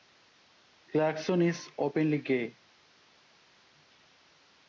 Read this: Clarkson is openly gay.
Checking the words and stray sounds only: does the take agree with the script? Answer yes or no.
yes